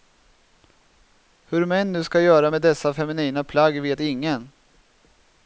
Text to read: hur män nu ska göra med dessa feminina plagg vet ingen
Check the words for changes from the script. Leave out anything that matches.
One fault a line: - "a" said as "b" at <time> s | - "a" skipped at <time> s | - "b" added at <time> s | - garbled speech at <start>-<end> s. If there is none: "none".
none